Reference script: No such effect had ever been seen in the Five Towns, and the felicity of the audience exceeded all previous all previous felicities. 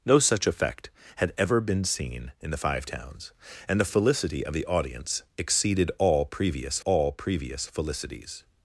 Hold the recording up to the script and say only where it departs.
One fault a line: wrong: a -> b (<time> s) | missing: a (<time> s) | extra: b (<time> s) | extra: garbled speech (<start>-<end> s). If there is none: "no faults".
no faults